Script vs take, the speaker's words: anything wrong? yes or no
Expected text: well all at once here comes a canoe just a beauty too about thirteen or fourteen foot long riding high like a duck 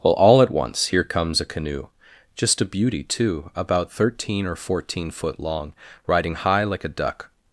no